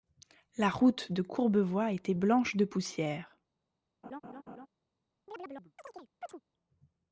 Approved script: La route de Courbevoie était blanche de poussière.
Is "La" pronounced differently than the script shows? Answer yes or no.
no